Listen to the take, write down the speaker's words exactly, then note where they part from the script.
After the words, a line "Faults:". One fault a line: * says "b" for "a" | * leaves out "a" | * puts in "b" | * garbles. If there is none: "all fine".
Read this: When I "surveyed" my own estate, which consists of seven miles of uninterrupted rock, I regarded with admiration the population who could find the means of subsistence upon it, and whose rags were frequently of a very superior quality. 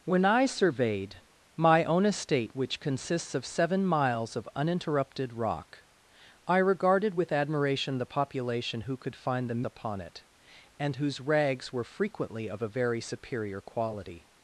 When I "surveyed" my own estate, which consists of seven miles of uninterrupted rock, I regarded with admiration the population who could find the upon it, and whose rags were frequently of a very superior quality.
Faults:
* leaves out "means of subsistence"